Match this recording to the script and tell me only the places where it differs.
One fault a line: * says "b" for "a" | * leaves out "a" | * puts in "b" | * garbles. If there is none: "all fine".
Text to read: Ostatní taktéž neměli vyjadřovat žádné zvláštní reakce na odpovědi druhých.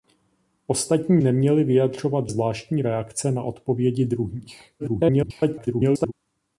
* leaves out "taktéž"
* leaves out "žádné"
* garbles